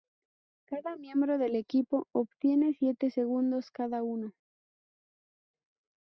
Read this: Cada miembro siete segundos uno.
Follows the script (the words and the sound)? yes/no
no